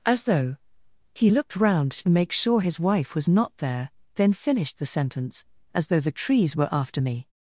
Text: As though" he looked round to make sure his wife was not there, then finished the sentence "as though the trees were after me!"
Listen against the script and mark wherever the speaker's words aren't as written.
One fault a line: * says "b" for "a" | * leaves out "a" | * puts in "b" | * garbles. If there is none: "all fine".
all fine